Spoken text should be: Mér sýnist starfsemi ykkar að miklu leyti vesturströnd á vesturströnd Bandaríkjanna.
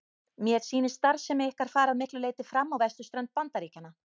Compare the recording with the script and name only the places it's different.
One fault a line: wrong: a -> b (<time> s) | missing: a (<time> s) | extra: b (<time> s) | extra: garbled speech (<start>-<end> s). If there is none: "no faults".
extra: fara (1.8 s)
wrong: vesturströnd -> fram (2.5 s)